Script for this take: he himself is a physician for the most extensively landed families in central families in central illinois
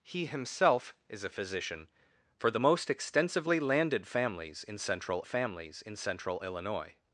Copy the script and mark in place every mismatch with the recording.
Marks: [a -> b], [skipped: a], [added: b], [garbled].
he himself is a physician for the most extensively landed families in central families in central illinois